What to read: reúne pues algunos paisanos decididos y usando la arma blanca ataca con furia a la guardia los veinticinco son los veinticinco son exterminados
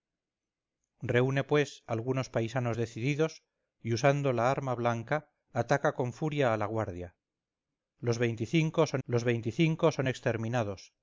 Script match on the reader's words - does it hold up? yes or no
yes